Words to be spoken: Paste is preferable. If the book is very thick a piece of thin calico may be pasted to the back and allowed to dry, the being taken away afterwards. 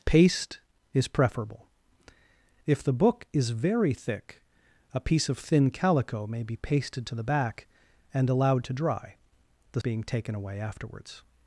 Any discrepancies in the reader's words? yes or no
no